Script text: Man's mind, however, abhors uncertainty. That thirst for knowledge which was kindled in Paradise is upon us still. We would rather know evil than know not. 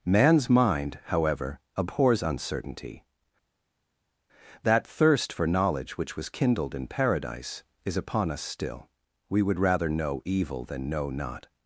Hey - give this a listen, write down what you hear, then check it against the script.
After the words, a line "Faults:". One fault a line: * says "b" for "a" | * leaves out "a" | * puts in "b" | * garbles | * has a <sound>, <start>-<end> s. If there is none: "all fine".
Man's mind, however, abhors uncertainty. That thirst for knowledge which was kindled in Paradise is upon us still. We would rather know evil than know not.
Faults:
all fine